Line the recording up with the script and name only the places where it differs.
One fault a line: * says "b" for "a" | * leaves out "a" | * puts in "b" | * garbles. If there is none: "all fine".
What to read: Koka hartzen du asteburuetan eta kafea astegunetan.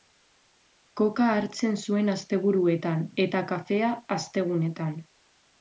* says "zuen" for "du"